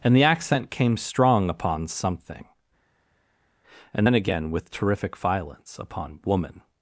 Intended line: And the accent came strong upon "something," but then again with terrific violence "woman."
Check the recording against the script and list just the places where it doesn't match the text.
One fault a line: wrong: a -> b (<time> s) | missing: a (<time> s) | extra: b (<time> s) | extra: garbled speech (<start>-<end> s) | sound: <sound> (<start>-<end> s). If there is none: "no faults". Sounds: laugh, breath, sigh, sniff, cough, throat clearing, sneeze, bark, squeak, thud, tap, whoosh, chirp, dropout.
wrong: but -> and (3.9 s)
extra: upon (5.8 s)